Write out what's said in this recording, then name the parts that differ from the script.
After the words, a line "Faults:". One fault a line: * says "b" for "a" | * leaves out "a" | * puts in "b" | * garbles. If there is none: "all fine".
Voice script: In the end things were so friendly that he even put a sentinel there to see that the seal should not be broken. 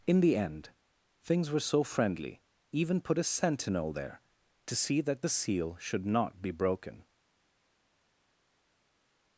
In the end things were so friendly even put a sentinel there to see that the seal should not be broken.
Faults:
* leaves out "that he"